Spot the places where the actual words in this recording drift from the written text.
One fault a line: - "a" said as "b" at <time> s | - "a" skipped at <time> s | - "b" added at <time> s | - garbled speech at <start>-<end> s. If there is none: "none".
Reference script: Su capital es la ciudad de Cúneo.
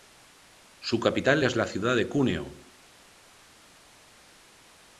none